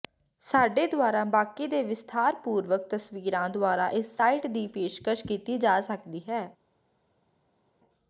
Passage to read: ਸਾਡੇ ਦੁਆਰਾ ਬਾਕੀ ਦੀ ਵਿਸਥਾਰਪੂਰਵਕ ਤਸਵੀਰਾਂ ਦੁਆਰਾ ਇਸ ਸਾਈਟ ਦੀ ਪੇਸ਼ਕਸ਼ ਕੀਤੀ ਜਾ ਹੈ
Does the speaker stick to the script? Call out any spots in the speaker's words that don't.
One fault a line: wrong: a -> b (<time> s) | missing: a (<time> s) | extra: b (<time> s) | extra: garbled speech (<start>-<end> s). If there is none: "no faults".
wrong: ਦੀ -> ਦੇ (1.7 s)
extra: ਸਕਦੀ (5.8 s)